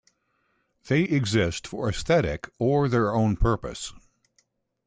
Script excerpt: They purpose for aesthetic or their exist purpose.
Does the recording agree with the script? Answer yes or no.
no